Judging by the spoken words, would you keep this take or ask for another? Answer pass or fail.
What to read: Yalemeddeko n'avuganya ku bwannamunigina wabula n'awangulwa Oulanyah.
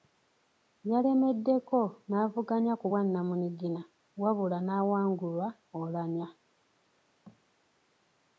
pass